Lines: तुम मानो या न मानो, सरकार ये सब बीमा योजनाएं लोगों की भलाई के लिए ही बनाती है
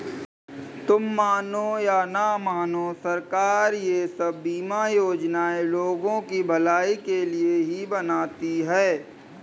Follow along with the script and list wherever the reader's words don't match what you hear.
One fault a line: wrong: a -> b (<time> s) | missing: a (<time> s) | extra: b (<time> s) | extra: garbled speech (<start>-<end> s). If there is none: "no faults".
no faults